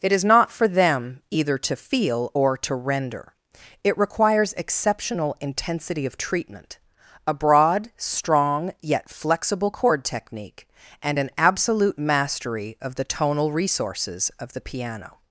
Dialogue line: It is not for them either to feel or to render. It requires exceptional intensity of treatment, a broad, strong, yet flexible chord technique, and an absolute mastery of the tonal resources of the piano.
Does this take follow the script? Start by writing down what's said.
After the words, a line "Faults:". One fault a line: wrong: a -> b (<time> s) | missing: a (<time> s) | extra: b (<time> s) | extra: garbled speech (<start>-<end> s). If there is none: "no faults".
It is not for them either to feel or to render. It requires exceptional intensity of treatment, a broad, strong, yet flexible chord technique, and an absolute mastery of the tonal resources of the piano.
Faults:
no faults